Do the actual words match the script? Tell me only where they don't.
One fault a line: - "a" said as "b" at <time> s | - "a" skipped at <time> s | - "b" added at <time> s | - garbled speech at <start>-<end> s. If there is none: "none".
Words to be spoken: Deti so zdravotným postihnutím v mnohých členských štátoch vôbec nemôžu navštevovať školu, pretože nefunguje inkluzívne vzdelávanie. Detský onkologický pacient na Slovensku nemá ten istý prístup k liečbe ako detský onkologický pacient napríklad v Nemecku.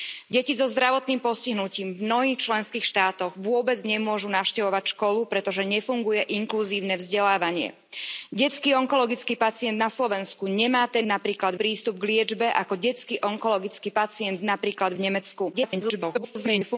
- "istý" said as "napríklad" at 11.1 s
- garbled speech at 15.5-16.8 s